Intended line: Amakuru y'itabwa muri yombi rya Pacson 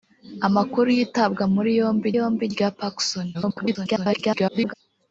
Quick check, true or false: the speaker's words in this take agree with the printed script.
false